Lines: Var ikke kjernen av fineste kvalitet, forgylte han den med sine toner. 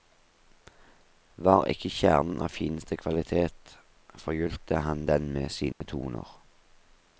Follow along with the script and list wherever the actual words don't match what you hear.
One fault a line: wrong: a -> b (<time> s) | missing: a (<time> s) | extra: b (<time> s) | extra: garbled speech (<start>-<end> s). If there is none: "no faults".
no faults